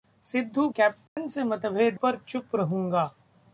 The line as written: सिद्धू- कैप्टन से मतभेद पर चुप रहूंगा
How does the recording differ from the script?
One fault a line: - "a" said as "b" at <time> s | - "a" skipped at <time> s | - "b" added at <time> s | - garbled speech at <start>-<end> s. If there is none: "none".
none